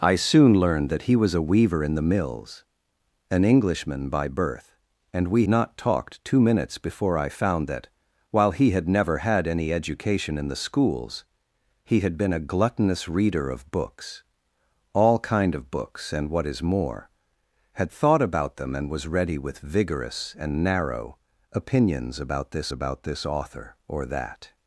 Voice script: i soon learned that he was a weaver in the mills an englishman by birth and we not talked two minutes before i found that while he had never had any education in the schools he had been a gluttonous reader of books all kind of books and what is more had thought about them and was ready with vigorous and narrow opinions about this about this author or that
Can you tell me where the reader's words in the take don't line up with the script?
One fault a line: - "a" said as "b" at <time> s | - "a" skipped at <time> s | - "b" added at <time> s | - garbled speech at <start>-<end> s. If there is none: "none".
none